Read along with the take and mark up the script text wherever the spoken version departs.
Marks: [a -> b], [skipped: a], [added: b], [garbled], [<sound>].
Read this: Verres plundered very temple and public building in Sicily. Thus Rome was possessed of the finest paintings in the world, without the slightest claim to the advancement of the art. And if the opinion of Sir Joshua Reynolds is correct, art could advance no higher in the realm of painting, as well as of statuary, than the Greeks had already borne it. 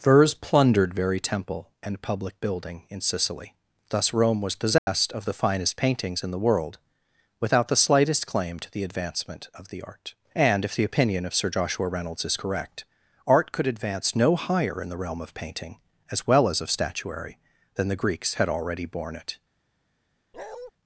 Verres plundered very temple and public building in Sicily. Thus Rome was possessed [dropout] of the finest paintings in the world, without the slightest claim to the advancement of the art. And if the opinion of Sir Joshua Reynolds is correct, art could advance no higher in the realm of painting, as well as of statuary, than the Greeks had already borne it. [bark]